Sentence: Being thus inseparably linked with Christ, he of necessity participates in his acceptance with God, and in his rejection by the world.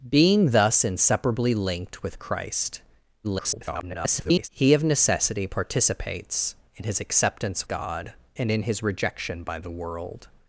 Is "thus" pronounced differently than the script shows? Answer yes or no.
no